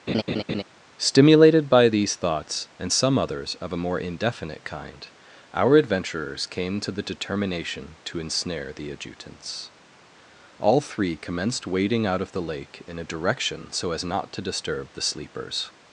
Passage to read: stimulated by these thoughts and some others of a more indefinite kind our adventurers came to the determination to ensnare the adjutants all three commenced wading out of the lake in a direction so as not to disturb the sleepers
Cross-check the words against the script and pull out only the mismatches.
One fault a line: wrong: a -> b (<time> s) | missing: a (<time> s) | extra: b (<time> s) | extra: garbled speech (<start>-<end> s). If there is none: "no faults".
no faults